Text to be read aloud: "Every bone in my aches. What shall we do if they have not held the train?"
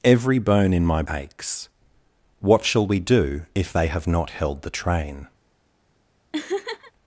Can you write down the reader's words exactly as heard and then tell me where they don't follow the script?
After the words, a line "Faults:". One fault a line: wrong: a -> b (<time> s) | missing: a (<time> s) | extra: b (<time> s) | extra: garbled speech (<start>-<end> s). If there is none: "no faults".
"Every bone in my aches. What shall we do if they have not held the train?"
Faults:
no faults